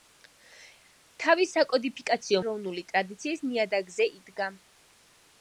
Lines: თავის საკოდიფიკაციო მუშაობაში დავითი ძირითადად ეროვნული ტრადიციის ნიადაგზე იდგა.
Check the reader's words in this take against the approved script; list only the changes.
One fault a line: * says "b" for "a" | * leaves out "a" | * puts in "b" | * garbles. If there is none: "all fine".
* leaves out "მუშაობაში დავითი ძირითადად"